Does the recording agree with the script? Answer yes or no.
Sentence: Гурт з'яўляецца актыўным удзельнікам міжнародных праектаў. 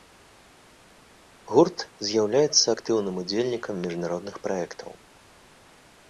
yes